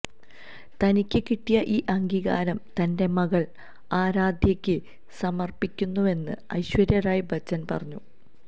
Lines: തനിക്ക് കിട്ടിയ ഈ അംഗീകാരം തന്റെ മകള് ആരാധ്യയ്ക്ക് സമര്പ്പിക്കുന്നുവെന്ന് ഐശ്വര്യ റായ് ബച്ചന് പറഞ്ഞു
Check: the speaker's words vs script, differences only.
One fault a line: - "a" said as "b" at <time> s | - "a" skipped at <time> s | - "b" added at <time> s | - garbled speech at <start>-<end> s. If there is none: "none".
none